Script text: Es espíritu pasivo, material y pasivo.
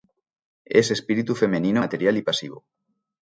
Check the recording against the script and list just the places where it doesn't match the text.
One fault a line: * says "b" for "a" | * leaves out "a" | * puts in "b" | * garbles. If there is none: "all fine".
* says "femenino" for "pasivo"